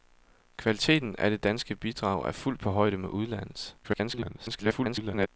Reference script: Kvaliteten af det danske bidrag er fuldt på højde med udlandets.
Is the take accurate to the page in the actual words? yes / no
no